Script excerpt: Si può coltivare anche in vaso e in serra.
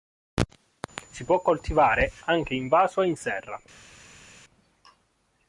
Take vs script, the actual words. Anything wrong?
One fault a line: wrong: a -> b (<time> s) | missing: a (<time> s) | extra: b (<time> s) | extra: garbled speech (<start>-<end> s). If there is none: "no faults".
no faults